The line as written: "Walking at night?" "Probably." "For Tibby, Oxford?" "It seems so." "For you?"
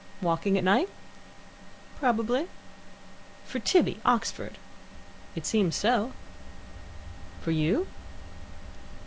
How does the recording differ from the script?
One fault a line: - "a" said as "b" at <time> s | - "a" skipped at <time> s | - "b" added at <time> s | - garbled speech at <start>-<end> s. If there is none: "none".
none